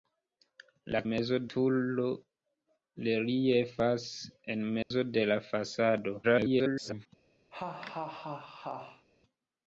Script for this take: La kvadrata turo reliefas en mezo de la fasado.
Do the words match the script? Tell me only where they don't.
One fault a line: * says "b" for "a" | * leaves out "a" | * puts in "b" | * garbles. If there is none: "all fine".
* says "mezo" for "kvadrata"
* garbles